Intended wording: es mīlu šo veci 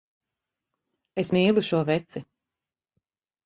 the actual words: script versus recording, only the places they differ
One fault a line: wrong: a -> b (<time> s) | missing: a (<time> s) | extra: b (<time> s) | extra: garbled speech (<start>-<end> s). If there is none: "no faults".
no faults